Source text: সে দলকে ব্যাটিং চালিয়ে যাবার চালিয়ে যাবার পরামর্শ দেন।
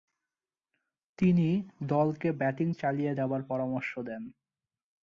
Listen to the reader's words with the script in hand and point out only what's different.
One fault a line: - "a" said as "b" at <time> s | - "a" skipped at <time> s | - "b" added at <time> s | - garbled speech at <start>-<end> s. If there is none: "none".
- "সে" said as "তিনি" at 1.2 s
- "চালিয়ে যাবার" skipped at 3.4 s